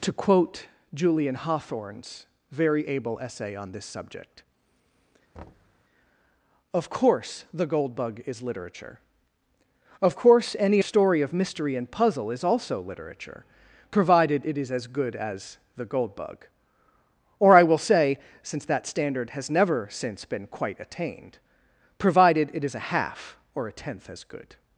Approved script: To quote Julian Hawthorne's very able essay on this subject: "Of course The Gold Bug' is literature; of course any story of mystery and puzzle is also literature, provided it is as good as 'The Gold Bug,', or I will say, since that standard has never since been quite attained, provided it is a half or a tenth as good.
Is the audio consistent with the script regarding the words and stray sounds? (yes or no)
no